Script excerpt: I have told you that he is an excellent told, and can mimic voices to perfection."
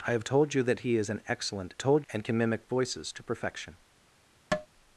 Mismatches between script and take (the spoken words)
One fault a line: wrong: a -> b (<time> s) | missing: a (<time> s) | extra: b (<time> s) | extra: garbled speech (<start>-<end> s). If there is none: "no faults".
no faults